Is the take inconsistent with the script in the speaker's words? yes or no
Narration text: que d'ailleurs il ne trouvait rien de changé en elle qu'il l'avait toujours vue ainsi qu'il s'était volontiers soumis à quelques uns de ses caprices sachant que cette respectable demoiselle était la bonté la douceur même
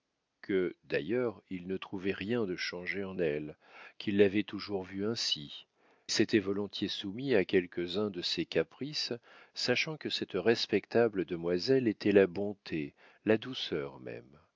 yes